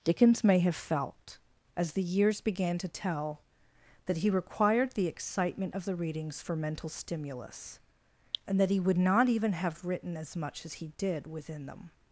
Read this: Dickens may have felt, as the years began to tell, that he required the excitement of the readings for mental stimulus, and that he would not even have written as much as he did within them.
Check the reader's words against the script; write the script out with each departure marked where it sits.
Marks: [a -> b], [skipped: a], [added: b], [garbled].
Dickens may have felt, as the years began to tell, that he required the excitement of the readings for mental stimulus, and that he would not even have written as much as he did within them.